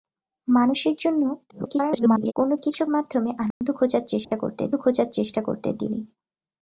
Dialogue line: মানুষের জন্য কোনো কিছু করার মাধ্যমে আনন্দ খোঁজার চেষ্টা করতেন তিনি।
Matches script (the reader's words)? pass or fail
fail